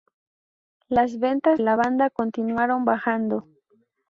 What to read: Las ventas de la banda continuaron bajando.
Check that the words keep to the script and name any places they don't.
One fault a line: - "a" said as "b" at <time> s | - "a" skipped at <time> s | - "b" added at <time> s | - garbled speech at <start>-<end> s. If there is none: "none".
- "de" skipped at 1.6 s